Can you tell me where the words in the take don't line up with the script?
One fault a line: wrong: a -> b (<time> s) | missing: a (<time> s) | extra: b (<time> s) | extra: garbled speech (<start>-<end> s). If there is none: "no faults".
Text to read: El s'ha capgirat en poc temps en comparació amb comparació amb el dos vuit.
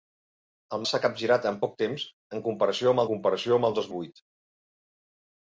no faults